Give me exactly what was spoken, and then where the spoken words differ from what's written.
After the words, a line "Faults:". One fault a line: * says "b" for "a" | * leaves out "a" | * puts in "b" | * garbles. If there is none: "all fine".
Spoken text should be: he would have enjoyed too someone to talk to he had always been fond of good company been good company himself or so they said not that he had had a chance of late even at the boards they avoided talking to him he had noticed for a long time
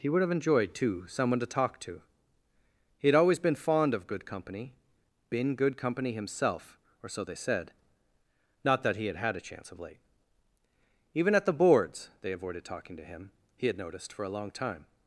he would have enjoyed too someone to talk to he had always been fond of good company been good company himself or so they said not that he had had a chance of late even at the boards they avoided talking to him he had noticed for a long time
Faults:
all fine